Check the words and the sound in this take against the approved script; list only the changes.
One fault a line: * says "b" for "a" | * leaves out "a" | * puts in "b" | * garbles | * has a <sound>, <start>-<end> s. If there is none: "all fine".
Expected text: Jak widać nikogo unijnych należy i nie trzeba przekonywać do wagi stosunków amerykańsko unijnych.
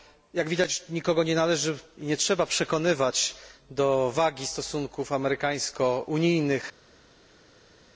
* says "nie" for "unijnych"